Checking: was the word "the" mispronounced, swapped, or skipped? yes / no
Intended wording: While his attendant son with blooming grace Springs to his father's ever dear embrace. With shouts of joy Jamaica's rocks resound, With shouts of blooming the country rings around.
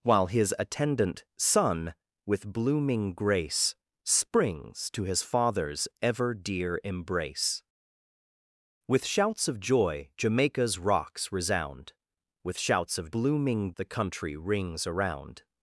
no